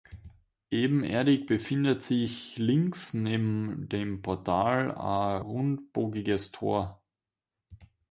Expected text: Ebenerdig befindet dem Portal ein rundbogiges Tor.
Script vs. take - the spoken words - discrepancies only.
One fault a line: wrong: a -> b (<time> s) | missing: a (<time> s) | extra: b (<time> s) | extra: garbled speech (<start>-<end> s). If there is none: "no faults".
extra: sich links neben (2.0 s)